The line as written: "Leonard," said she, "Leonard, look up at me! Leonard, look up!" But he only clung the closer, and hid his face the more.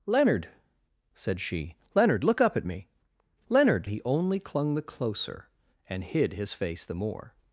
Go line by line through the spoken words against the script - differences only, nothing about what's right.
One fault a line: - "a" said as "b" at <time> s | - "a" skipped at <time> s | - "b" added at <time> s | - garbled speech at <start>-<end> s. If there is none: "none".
- "look up But" skipped at 3.9 s